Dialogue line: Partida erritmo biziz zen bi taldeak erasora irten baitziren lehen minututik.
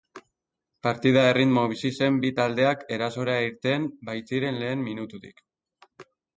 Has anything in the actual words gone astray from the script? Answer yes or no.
no